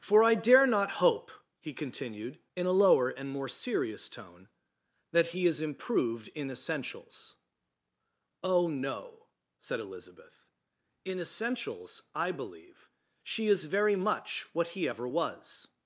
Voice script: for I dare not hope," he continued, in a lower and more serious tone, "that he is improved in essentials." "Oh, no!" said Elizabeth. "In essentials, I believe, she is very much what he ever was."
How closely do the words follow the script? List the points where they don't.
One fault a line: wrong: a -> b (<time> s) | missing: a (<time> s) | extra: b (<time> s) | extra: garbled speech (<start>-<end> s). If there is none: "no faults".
no faults